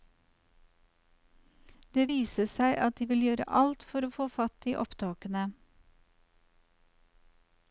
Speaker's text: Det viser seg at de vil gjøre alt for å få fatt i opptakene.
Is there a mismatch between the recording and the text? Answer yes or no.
no